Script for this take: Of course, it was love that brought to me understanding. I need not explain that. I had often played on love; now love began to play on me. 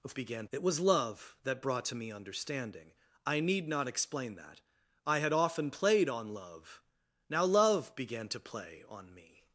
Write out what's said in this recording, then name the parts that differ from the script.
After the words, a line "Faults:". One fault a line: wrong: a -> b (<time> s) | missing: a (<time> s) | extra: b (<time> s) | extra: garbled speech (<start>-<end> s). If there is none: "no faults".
Of began, it was love that brought to me understanding. I need not explain that. I had often played on love; now love began to play on me.
Faults:
wrong: course -> began (0.2 s)